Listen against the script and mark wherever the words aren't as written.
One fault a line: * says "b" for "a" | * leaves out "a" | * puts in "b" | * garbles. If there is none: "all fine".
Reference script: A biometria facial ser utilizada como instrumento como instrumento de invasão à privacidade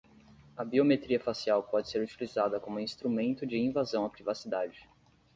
* puts in "pode"
* leaves out "como instrumento"